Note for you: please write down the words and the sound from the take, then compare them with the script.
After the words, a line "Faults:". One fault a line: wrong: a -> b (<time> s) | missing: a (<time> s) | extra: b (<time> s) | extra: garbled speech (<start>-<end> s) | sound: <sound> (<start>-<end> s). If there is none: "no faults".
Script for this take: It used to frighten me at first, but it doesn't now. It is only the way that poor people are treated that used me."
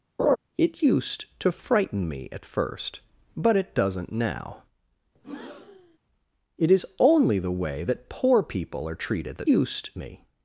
It used to frighten me at first, but it doesn't now. It is only the way that poor people are treated that used me."
Faults:
sound: laugh (0.2-0.4 s)
sound: breath (5.2-6.0 s)